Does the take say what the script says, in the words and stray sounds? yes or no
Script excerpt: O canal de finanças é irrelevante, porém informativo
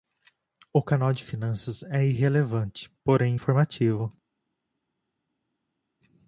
yes